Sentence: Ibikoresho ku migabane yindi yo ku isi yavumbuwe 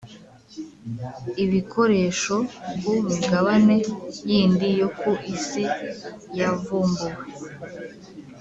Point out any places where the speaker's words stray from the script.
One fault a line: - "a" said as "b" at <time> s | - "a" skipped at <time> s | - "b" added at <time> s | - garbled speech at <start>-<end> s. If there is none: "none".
none